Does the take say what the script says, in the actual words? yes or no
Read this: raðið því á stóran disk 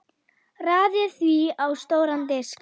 yes